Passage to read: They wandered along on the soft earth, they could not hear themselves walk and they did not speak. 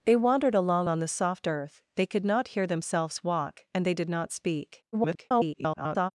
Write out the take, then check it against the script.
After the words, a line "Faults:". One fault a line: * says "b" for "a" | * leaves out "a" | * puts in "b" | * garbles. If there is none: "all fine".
They wandered along on the soft earth, they could not hear themselves walk and they did not speak. [garbled]
Faults:
* garbles